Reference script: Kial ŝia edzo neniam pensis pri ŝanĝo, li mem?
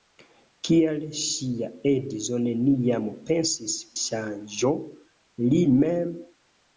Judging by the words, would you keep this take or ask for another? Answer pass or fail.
fail